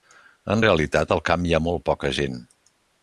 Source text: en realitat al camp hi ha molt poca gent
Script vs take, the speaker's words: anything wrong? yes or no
no